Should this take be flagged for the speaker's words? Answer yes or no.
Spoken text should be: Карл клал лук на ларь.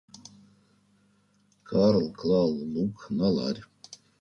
no